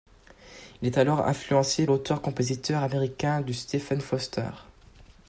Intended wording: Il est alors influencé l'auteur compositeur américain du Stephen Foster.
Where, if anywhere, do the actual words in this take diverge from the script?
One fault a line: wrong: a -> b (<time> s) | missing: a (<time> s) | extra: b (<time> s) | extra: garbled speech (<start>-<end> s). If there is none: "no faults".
no faults